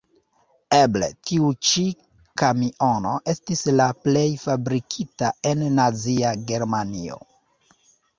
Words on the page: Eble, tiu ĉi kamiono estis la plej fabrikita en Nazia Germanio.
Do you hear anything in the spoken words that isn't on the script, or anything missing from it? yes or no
no